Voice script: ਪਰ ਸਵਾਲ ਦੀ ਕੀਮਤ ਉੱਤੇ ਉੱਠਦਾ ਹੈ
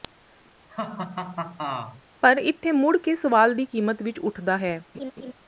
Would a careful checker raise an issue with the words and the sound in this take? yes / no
yes